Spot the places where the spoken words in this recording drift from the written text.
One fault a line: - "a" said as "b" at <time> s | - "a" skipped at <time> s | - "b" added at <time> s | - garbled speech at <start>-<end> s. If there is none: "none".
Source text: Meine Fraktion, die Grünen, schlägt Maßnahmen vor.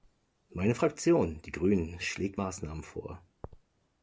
none